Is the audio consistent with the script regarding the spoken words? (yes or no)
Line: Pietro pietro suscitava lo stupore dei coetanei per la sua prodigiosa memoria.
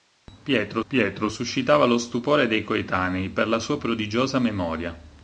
yes